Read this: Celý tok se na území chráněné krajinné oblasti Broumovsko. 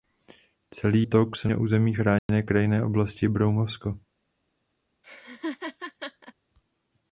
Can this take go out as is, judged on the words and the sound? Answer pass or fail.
fail